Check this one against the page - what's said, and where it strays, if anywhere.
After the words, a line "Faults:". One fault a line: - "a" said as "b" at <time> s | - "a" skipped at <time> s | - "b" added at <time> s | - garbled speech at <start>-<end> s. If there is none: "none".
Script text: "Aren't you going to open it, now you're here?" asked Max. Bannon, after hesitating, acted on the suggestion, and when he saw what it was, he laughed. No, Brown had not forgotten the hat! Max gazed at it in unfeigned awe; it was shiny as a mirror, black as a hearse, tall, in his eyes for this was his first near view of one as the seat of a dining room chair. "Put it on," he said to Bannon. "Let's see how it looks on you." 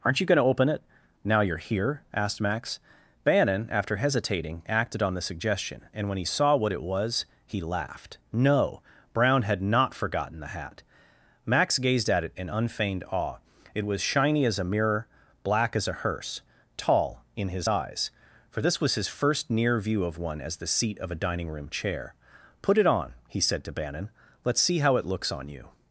"Aren't you going to open it, now you're here?" asked Max. Bannon, after hesitating, acted on the suggestion, and when he saw what it was, he laughed. No, Brown had not forgotten the hat! Max gazed at it in unfeigned awe; it was shiny as a mirror, black as a hearse, tall, in his eyes for this was his first near view of one as the seat of a dining room chair. "Put it on," he said to Bannon. "Let's see how it looks on you."
Faults:
none